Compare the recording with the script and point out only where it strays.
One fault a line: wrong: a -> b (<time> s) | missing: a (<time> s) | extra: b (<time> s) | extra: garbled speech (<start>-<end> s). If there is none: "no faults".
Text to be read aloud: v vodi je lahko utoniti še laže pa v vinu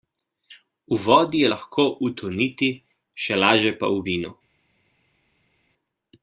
no faults